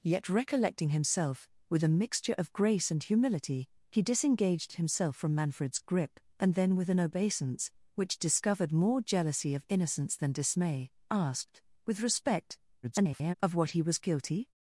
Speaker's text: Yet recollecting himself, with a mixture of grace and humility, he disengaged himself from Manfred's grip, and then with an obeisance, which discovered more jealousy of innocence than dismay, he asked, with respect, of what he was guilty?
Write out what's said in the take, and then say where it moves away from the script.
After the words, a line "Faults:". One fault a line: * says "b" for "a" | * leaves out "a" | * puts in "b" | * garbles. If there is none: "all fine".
Yet recollecting himself, with a mixture of grace and humility, he disengaged himself from Manfred's grip, and then with an obeisance, which discovered more jealousy of innocence than dismay, asked, with respect, [garbled] of what he was guilty?
Faults:
* leaves out "he"
* garbles